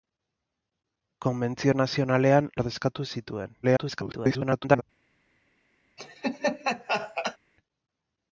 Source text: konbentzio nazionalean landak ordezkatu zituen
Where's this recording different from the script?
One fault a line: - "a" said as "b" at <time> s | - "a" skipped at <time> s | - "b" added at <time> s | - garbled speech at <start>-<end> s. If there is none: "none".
- "landak" skipped at 2.5 s
- garbled speech at 3.6-4.8 s